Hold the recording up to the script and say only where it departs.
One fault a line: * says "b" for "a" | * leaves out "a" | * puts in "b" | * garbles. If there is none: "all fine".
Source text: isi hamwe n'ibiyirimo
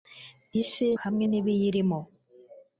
all fine